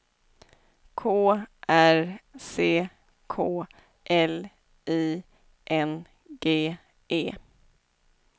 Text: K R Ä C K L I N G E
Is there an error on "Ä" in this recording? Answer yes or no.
yes